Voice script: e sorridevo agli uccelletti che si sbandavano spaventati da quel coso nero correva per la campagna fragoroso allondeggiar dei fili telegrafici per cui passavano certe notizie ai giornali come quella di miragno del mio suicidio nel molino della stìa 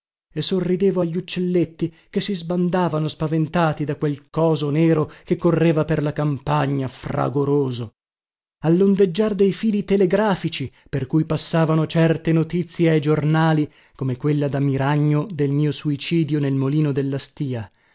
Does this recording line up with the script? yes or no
no